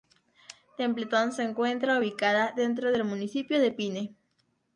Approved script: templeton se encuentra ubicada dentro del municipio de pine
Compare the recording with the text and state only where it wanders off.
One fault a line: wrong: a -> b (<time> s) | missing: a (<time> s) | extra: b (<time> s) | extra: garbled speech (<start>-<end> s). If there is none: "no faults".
no faults